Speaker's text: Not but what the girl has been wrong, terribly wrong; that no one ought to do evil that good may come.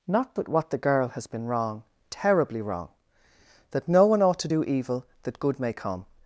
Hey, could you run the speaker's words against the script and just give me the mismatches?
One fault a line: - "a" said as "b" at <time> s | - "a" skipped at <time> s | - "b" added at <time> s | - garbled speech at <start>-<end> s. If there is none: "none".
none